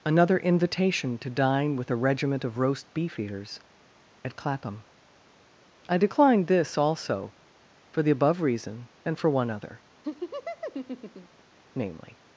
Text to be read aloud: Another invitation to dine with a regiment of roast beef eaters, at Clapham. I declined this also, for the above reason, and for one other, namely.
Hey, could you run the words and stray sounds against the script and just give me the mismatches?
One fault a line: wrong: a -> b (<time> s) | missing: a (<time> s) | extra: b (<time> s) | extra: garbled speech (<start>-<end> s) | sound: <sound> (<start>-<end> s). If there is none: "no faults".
sound: laugh (10.0-11.4 s)